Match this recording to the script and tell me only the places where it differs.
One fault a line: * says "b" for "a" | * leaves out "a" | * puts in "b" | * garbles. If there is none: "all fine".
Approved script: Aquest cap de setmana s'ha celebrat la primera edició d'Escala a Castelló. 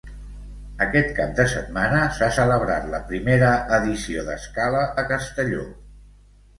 all fine